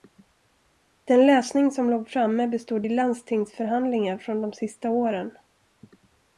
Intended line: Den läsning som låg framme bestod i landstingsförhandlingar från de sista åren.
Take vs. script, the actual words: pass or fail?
pass